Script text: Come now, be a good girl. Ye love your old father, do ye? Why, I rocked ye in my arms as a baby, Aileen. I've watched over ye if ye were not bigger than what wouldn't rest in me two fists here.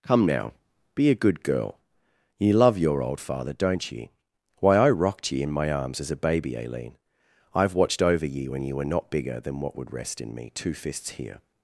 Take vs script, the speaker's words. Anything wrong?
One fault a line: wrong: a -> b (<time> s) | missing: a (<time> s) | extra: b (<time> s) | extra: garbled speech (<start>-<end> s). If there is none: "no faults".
wrong: do -> don't (3.5 s)
wrong: if -> when (8.5 s)
wrong: wouldn't -> would (9.8 s)